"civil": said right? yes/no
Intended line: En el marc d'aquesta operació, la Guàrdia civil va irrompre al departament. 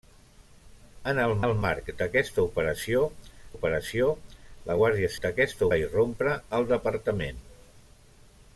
no